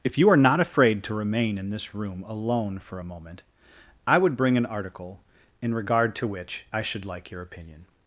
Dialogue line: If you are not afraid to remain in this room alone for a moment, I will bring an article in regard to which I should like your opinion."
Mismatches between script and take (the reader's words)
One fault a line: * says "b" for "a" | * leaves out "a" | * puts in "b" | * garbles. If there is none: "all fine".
* says "would" for "will"